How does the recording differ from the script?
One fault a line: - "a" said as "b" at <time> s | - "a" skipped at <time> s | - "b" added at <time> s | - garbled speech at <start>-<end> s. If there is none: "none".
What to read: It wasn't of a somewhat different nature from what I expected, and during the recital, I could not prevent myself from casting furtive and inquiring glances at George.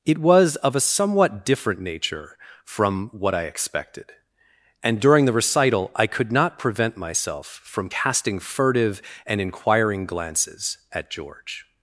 - "wasn't" said as "was" at 0.2 s